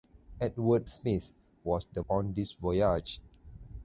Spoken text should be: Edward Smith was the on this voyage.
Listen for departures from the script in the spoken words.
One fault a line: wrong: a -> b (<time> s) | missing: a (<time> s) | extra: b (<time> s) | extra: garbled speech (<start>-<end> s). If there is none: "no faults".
no faults